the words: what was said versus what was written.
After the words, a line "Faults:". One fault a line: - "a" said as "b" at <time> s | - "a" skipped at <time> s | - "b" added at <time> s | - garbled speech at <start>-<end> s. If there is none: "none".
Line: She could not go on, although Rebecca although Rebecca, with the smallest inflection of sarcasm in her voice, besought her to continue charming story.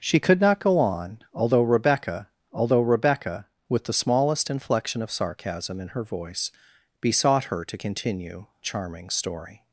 She could not go on, although Rebecca although Rebecca, with the smallest inflection of sarcasm in her voice, besought her to continue charming story.
Faults:
none